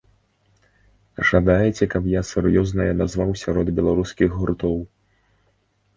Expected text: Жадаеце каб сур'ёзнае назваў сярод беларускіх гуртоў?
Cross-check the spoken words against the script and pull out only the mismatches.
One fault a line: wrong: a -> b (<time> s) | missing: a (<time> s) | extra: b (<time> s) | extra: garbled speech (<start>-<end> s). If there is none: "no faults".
extra: я (2.1 s)